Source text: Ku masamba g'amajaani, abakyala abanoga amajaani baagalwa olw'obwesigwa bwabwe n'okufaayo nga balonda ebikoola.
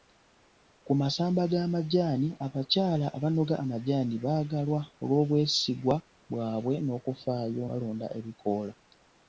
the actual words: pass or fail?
fail